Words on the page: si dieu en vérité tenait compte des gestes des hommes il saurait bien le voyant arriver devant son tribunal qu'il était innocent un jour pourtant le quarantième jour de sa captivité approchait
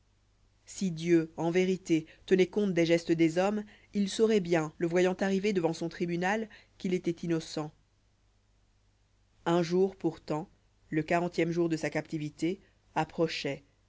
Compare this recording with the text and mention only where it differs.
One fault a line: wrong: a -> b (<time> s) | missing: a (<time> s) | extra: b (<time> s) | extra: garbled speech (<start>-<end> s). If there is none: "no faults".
no faults